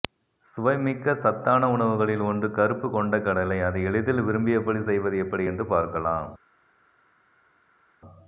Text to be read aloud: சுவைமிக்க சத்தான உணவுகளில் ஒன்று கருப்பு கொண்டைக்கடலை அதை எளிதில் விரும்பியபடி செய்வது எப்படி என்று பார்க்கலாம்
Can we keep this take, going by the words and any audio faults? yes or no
yes